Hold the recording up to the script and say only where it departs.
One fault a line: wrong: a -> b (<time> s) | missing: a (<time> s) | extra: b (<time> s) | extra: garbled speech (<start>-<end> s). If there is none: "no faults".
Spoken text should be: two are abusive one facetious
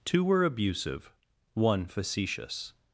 wrong: are -> were (0.2 s)